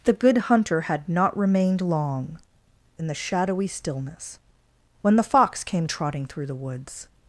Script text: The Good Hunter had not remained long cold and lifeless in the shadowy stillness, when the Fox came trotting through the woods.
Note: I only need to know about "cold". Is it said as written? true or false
false